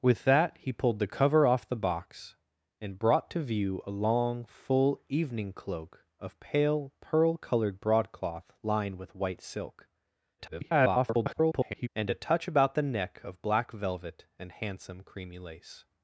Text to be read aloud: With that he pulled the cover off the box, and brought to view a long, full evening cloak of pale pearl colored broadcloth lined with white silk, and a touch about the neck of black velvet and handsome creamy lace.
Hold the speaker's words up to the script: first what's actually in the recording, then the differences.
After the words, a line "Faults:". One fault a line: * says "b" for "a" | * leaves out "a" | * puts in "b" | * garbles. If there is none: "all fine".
With that he pulled the cover off the box, and brought to view a long, full evening cloak of pale pearl colored broadcloth lined with white silk, [garbled] and a touch about the neck of black velvet and handsome creamy lace.
Faults:
* garbles